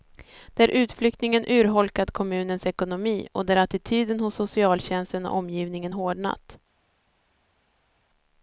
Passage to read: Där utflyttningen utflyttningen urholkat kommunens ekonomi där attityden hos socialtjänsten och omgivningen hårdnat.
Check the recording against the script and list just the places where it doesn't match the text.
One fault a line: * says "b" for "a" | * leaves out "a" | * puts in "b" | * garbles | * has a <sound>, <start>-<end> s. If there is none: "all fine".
* leaves out "utflyttningen"
* puts in "och"